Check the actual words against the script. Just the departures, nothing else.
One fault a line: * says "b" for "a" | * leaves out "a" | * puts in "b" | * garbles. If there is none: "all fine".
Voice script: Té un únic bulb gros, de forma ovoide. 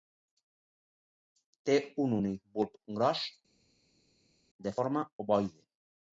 all fine